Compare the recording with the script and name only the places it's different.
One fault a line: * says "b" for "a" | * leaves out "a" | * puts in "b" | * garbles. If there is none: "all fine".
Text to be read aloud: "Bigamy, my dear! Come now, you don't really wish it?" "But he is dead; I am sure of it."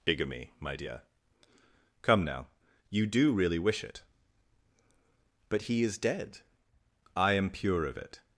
* says "do" for "don't"
* says "pure" for "sure"